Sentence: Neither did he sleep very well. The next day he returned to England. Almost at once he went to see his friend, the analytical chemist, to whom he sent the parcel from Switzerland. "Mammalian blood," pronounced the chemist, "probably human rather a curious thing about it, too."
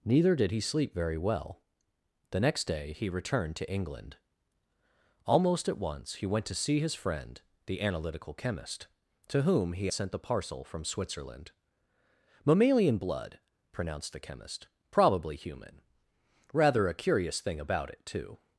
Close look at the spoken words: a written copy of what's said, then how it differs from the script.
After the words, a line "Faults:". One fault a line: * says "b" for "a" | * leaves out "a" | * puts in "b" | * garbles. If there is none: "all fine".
Neither did he sleep very well. The next day he returned to England. Almost at once he went to see his friend, the analytical chemist, to whom he sent the parcel from Switzerland. "Mammalian blood," pronounced the chemist, "probably human rather a curious thing about it, too."
Faults:
all fine